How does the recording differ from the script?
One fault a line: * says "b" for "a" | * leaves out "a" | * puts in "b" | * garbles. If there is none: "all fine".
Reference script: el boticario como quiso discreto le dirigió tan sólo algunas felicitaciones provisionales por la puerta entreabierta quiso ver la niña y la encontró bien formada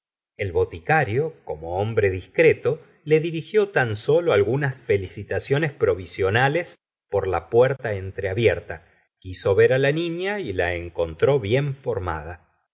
* says "hombre" for "quiso"